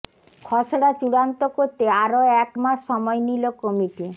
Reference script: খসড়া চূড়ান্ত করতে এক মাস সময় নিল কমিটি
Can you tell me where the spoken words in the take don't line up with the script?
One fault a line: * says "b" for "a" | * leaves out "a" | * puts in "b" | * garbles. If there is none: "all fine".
* puts in "আরও"